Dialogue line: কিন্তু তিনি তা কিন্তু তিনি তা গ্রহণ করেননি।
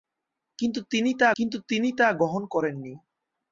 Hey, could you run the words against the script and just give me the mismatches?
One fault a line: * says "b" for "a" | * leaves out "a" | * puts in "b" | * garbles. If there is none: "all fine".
all fine